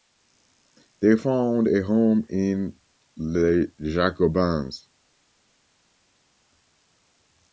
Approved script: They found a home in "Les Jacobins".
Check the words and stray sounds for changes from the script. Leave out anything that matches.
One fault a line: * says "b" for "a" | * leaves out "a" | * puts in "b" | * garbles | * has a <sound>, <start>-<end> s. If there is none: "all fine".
all fine